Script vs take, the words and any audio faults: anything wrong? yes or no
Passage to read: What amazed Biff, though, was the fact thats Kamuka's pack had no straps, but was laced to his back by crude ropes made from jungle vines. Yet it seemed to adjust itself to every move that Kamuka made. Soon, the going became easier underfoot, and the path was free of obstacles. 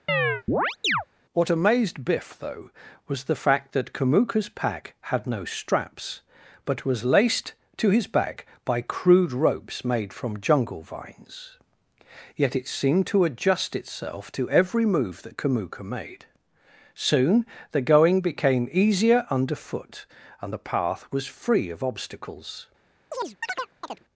yes